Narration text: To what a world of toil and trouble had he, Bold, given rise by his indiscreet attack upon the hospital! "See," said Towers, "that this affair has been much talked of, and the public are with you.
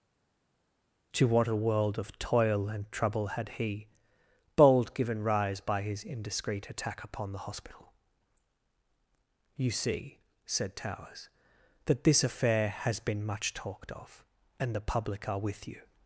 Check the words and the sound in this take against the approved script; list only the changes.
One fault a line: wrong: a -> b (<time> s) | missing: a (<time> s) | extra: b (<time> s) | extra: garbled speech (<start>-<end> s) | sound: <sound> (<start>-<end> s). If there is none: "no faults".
extra: You (9.6 s)